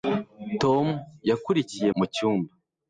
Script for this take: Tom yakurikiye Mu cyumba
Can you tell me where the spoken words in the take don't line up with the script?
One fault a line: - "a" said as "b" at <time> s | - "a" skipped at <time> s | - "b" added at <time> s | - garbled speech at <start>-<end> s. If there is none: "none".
none